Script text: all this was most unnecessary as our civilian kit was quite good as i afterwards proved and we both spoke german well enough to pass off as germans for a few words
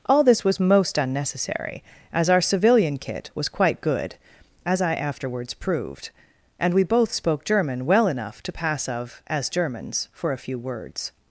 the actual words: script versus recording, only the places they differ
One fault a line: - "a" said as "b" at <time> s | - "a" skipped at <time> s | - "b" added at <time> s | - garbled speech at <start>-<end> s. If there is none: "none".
- "off" said as "of" at 8.9 s